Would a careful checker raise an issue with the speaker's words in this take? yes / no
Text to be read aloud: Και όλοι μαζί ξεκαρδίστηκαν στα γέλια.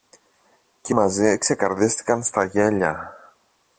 yes